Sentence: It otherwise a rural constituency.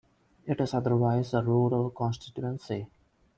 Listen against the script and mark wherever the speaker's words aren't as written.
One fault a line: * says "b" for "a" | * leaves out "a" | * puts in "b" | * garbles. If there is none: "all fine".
* puts in "is"